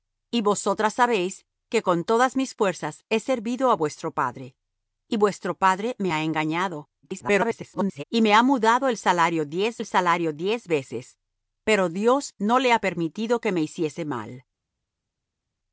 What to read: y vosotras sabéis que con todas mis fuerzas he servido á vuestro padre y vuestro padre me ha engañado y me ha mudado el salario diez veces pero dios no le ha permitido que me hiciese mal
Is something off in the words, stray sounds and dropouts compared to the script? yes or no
yes